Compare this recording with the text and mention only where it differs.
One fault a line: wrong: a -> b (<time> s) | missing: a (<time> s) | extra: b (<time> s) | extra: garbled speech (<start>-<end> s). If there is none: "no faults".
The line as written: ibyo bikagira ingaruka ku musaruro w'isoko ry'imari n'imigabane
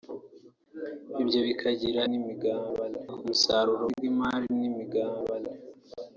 wrong: ingaruka -> n'imigabane (2.1 s)
missing: w'isoko (3.8 s)